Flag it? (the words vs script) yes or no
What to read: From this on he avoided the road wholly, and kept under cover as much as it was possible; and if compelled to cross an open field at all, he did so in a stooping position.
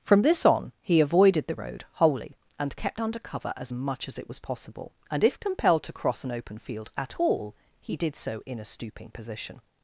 no